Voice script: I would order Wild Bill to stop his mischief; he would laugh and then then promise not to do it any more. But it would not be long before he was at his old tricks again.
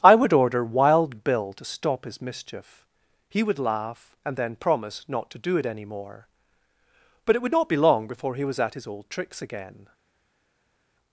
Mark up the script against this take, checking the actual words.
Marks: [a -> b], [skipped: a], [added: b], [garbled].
I would order Wild Bill to stop his mischief; he would laugh and then [skipped: then] promise not to do it any more. But it would not be long before he was at his old tricks again.